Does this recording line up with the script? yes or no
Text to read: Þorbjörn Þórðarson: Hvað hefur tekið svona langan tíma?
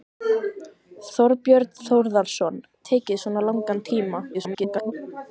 no